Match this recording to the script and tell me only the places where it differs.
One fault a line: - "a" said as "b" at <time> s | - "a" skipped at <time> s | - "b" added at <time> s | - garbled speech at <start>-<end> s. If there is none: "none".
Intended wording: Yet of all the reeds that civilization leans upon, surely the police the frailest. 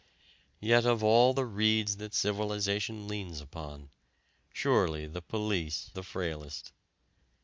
none